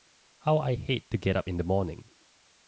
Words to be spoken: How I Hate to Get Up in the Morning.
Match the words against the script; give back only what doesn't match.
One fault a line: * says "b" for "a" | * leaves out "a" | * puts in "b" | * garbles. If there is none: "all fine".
all fine